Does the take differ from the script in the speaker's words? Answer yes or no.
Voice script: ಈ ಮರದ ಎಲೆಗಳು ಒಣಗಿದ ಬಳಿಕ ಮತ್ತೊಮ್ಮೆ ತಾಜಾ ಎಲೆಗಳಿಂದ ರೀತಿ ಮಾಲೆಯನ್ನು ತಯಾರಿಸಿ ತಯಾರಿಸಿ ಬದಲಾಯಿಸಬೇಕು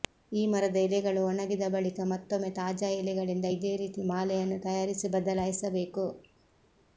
yes